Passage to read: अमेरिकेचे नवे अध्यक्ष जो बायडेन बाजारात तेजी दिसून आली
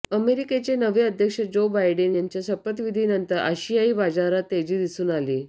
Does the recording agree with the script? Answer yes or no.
no